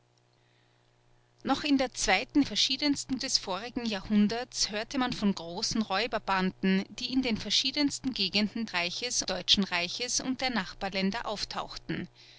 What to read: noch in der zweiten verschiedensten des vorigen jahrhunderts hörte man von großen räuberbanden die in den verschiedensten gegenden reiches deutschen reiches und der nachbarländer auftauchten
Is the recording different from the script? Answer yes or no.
no